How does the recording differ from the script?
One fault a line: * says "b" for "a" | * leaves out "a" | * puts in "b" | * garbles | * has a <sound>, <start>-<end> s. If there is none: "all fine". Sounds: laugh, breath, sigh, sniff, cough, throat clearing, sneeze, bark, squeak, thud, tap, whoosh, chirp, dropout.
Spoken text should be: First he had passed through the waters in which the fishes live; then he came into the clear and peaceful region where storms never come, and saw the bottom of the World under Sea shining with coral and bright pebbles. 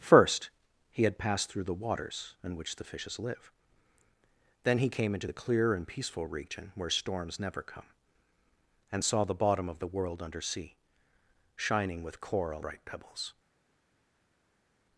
* leaves out "and"